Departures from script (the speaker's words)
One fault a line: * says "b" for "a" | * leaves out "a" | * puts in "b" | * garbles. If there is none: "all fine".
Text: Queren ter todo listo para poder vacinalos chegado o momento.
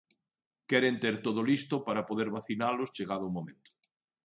all fine